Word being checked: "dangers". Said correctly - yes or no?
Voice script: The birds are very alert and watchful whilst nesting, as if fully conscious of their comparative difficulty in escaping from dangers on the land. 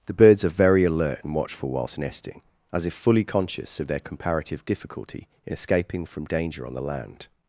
no